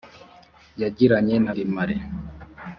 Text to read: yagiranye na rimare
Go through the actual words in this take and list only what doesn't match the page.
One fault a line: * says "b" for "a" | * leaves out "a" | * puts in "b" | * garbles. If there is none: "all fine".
all fine